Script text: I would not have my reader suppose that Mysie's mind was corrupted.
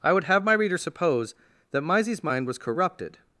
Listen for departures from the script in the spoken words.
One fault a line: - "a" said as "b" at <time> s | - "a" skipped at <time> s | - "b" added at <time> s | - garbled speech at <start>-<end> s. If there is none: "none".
- "not" skipped at 0.2 s